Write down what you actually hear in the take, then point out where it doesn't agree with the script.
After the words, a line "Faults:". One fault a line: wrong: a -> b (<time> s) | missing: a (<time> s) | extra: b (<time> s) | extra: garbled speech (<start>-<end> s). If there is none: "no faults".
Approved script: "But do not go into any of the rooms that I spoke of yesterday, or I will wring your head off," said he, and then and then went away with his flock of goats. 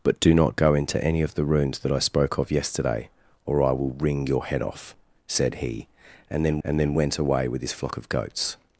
"But do not go into any of the rooms that I spoke of yesterday, or I will wring your head off," said he, and then and then went away with his flock of goats.
Faults:
no faults